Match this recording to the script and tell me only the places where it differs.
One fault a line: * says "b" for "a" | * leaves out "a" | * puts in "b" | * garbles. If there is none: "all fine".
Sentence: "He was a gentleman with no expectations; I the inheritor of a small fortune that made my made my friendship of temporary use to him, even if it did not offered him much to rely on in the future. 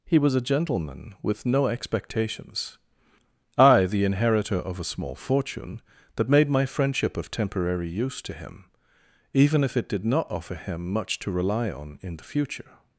* leaves out "made my"
* says "offer" for "offered"